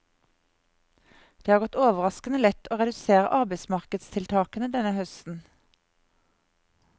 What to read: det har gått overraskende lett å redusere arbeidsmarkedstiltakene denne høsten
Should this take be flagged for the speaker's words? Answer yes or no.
no